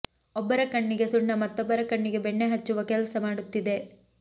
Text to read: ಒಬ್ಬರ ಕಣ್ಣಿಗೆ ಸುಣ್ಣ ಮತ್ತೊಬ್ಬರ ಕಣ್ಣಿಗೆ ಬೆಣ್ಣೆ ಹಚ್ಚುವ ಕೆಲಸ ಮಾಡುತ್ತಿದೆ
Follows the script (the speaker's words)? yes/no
yes